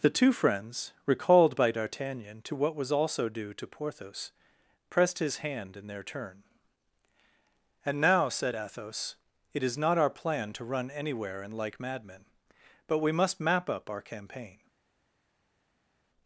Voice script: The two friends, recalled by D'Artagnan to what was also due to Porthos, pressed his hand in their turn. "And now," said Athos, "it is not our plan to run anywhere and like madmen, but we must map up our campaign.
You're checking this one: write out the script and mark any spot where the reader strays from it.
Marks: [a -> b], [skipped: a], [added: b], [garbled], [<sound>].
The two friends, recalled by D'Artagnan to what was also due to Porthos, pressed his hand in their turn. "And now," said Athos, "it is not our plan to run anywhere and like madmen, but we must map up our campaign.